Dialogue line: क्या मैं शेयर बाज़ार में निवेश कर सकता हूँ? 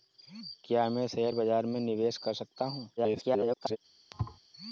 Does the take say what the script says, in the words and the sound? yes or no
no